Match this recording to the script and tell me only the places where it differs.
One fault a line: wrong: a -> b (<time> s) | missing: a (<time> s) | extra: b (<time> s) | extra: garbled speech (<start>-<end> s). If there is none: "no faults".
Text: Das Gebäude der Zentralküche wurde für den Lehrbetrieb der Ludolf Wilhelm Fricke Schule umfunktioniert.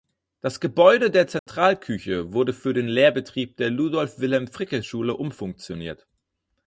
no faults